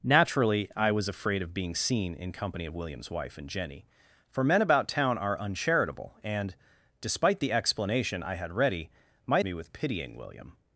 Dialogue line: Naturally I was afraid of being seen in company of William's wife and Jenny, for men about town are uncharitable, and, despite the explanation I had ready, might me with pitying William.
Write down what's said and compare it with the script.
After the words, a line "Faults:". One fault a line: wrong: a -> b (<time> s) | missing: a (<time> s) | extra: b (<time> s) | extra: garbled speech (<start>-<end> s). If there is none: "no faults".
Naturally I was afraid of being seen in company of William's wife and Jenny, for men about town are uncharitable, and, despite the explanation I had ready, might me with pitying William.
Faults:
no faults